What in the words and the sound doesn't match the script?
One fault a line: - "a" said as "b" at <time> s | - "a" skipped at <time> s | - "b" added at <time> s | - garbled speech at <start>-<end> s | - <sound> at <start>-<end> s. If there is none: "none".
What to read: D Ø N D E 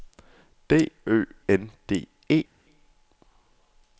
none